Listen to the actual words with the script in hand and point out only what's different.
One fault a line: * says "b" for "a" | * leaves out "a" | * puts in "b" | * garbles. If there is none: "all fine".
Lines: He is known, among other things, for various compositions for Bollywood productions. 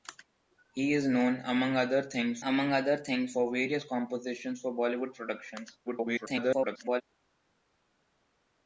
* puts in "among other things"
* garbles